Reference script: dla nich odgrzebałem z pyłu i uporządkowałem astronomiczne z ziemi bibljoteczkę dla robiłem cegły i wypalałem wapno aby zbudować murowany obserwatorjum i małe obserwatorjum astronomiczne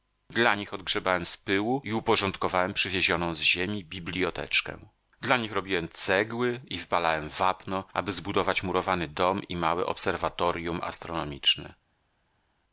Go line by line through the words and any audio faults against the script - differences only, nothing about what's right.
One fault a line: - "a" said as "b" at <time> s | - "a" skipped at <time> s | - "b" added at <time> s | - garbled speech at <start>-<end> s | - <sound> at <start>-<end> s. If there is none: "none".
- "astronomiczne" said as "przywiezioną" at 2.7 s
- "nich" added at 5.4 s
- "obserwatorjum" said as "dom" at 9.1 s